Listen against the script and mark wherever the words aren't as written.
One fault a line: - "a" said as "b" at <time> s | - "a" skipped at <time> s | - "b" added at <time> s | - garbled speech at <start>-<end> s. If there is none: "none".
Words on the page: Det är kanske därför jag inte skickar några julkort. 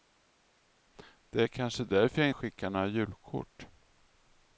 - "inte" skipped at 2.3 s